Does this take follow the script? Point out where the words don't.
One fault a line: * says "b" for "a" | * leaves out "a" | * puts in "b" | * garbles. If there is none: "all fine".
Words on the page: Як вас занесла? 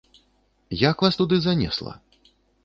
* puts in "туды"